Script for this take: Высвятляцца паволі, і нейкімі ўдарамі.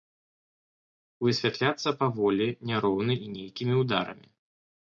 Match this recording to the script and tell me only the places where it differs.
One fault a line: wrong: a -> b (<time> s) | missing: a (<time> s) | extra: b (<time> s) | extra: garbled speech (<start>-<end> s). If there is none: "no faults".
extra: няроўна (2.7 s)